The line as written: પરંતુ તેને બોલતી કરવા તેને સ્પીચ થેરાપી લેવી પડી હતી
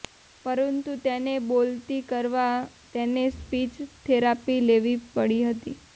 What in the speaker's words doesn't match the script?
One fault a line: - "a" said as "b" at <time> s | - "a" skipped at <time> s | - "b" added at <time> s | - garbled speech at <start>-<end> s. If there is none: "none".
none